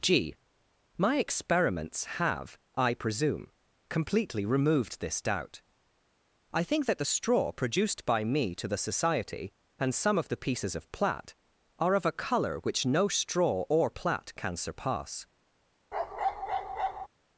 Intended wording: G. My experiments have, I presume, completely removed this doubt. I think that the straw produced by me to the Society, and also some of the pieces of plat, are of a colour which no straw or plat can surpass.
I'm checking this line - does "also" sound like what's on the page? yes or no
no